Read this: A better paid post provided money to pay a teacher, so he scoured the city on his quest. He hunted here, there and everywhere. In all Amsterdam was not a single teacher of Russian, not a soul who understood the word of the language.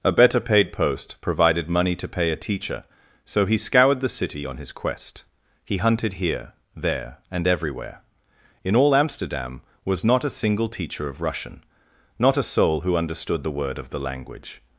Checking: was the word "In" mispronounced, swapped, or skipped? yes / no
no